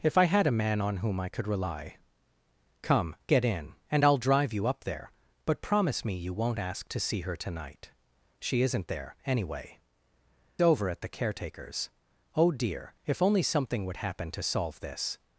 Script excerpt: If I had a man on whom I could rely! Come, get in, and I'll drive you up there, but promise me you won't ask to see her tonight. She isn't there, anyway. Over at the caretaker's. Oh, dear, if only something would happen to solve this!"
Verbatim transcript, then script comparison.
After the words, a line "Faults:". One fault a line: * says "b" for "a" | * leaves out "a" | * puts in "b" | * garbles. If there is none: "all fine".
If I had a man on whom I could rely! Come, get in, and I'll drive you up there, but promise me you won't ask to see her tonight. She isn't there, anyway. Over at the caretaker's. Oh, dear, if only something would happen to solve this!"
Faults:
all fine